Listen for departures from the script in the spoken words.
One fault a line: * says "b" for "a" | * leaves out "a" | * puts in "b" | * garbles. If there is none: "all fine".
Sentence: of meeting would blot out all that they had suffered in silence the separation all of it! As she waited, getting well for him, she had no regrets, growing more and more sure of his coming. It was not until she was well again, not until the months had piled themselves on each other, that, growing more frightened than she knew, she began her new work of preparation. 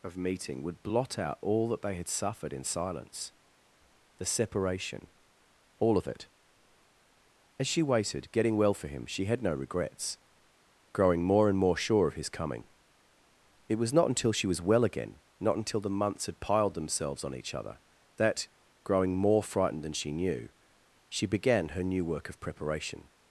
all fine